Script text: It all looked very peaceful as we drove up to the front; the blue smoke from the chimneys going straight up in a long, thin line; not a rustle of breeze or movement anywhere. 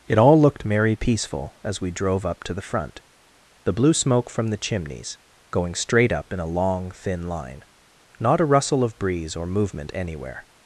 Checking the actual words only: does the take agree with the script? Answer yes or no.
no